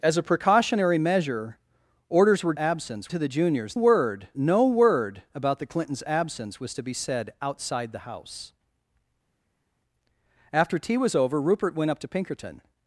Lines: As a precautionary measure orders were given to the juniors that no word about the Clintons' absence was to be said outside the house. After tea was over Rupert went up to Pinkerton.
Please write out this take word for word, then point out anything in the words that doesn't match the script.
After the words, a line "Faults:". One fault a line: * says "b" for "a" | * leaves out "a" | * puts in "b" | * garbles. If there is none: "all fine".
As a precautionary measure orders were absence to the juniors word no word about the Clintons' absence was to be said outside the house. After tea was over Rupert went up to Pinkerton.
Faults:
* says "absence" for "given"
* says "word" for "that"